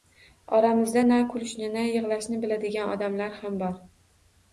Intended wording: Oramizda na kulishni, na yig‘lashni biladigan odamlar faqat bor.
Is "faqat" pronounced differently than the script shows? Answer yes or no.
yes